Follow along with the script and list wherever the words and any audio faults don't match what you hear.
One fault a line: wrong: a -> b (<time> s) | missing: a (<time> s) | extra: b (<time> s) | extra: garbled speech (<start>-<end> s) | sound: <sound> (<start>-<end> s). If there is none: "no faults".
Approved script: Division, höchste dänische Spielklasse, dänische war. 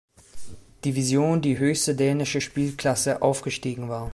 extra: die (1.4 s)
wrong: dänische -> aufgestiegen (3.2 s)